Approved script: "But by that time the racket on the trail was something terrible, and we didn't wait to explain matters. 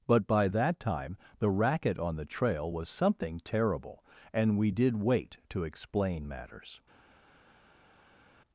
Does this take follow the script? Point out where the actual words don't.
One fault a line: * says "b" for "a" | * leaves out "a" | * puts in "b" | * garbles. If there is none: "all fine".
* says "did" for "didn't"